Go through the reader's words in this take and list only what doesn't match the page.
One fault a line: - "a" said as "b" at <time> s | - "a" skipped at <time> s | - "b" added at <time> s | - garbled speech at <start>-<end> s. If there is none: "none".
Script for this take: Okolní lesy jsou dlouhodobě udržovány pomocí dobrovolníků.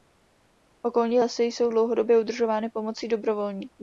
none